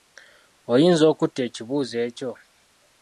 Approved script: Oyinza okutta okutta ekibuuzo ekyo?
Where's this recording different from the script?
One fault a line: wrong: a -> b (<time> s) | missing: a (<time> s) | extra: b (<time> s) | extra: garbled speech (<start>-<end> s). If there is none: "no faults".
missing: okutta (1.4 s)